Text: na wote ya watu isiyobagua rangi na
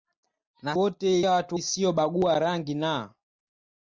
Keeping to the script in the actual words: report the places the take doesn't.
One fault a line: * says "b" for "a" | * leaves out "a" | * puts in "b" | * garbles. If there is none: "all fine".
all fine